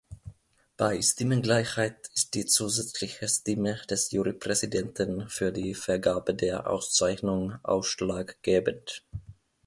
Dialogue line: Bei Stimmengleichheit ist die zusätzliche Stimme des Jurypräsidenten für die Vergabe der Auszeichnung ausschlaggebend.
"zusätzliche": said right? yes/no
yes